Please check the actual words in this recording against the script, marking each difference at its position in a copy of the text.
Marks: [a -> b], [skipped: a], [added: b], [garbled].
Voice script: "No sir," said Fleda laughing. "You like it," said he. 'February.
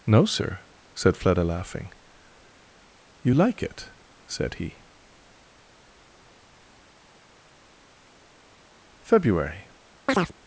"No sir," said Fleda laughing. "You like it," said he. 'February.